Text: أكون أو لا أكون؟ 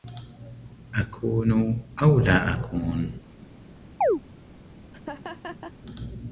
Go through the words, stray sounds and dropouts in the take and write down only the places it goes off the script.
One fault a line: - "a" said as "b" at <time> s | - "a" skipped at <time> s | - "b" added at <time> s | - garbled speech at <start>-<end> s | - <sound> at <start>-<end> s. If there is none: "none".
- chirp at 4.0-4.2 s
- laugh at 4.9-5.7 s